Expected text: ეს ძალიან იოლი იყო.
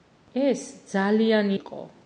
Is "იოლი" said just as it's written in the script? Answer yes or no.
no